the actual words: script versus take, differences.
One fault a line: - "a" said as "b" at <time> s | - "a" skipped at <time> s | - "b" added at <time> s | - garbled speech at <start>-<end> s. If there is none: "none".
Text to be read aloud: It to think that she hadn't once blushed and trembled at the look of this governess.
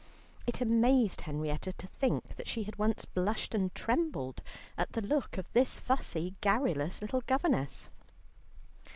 - "amazed Henrietta" added at 0.6 s
- "hadn't" said as "had" at 2.6 s
- "fussy garrulous little" added at 5.8 s